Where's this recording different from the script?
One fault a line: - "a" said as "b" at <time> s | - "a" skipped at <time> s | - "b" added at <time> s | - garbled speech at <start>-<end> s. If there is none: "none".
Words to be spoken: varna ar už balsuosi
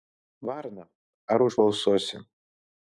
none